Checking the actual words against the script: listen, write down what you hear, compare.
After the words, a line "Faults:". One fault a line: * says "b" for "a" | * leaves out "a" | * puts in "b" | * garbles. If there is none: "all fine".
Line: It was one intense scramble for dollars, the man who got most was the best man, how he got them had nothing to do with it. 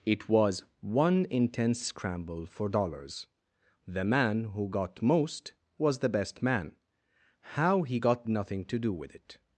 It was one intense scramble for dollars, the man who got most was the best man, how he got nothing to do with it.
Faults:
* leaves out "them had"